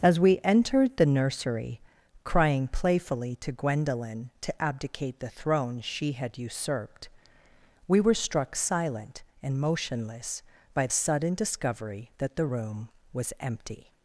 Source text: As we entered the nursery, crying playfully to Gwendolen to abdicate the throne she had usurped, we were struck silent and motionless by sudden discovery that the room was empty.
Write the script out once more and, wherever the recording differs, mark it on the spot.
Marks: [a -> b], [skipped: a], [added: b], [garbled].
As we entered the nursery, crying playfully to Gwendolen to abdicate the throne she had usurped, we were struck silent and motionless by sudden discovery that the room was empty.